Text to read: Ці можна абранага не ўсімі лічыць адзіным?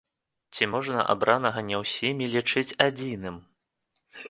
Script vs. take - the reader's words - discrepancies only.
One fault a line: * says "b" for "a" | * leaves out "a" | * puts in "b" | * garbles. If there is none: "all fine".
all fine